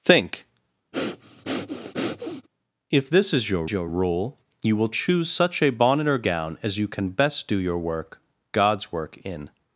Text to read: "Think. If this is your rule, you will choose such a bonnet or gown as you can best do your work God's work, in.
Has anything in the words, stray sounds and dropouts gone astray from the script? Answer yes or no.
yes